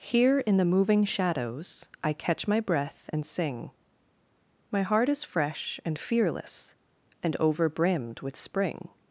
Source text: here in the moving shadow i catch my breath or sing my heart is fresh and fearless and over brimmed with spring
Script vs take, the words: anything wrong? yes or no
yes